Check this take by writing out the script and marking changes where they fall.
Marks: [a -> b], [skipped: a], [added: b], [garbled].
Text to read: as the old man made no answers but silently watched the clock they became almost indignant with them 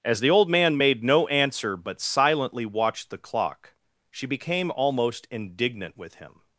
as the old man made no [answers -> answer] but silently watched the clock [they -> she] became almost indignant with [them -> him]